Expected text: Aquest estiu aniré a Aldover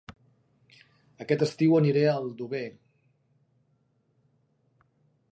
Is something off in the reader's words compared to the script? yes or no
no